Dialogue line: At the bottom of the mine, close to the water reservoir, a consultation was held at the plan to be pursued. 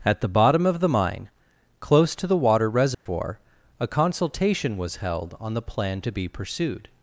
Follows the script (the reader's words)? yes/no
no